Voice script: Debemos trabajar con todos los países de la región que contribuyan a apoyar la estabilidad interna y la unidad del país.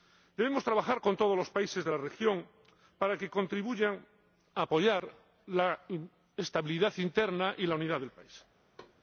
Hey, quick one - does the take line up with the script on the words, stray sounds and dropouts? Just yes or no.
no